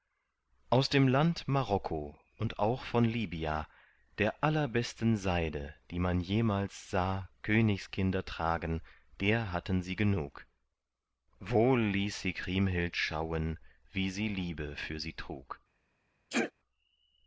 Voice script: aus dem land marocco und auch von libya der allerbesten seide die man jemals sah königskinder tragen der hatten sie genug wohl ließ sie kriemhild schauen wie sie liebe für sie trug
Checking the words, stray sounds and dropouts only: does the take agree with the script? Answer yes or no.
no